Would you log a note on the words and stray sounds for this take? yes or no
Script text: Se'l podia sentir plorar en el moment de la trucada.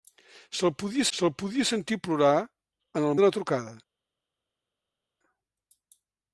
yes